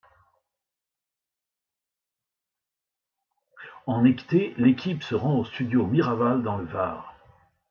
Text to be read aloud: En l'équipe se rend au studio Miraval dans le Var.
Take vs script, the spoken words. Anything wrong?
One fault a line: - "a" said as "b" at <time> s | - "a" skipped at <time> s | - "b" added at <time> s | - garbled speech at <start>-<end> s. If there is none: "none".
- "été" added at 4.0 s